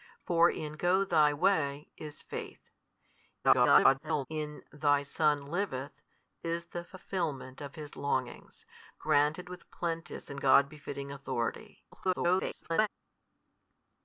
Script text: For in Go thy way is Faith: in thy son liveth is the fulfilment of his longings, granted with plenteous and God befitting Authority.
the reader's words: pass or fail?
fail